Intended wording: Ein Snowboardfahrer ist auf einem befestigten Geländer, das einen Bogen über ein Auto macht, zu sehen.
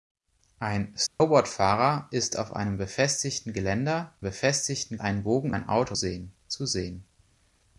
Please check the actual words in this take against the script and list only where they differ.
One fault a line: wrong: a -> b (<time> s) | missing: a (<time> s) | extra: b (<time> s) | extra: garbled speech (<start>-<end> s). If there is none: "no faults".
wrong: das -> befestigten (4.2 s)
missing: über (5.5 s)
wrong: macht -> sehen (5.9 s)